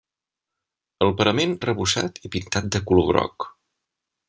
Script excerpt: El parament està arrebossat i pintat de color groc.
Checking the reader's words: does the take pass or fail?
fail